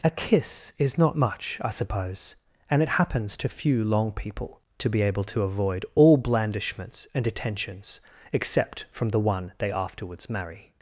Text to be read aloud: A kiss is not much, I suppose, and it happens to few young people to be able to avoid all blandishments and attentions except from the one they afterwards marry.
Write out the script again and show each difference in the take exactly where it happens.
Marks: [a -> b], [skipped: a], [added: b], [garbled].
A kiss is not much, I suppose, and it happens to few [young -> long] people to be able to avoid all blandishments and attentions except from the one they afterwards marry.